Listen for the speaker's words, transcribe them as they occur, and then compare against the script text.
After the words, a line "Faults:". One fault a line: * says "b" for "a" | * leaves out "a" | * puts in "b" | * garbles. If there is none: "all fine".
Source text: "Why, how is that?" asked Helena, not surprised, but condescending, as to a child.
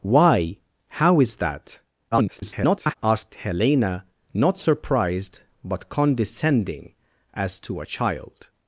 "Why, how is that?" [garbled] asked Helena, not surprised, but condescending, as to a child.
Faults:
* garbles